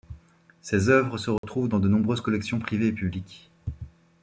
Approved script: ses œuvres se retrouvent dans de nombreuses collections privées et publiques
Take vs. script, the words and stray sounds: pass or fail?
fail